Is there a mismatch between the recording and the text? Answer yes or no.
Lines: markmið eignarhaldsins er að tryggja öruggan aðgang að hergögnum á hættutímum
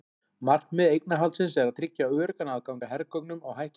no